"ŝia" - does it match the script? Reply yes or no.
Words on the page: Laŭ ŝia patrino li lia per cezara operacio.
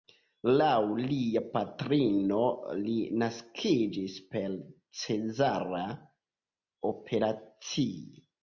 no